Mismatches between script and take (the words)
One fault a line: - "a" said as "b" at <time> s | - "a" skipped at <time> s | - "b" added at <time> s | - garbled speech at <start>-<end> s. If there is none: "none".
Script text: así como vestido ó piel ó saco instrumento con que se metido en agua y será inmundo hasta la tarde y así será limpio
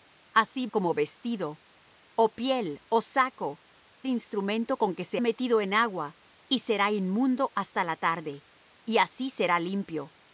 none